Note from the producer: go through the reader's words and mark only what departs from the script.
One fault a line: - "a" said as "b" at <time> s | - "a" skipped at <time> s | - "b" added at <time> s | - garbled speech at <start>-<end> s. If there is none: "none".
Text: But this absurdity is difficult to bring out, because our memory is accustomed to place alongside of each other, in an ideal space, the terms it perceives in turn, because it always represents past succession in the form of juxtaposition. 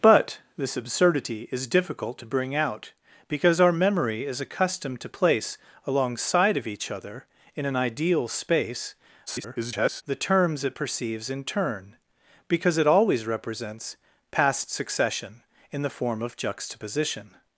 - garbled speech at 9.3-10.0 s